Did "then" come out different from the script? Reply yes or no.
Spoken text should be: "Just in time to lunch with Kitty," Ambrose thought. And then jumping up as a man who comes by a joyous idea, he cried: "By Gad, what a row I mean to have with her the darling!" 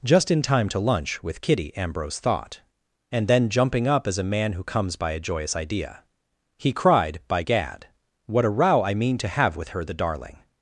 no